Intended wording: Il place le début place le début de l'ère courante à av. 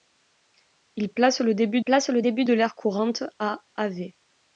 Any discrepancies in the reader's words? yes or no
no